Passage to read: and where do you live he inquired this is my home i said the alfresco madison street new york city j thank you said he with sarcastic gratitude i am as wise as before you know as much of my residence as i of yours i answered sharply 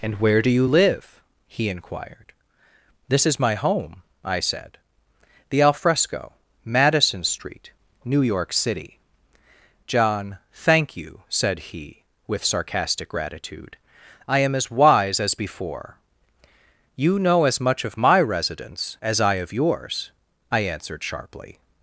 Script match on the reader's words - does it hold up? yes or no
no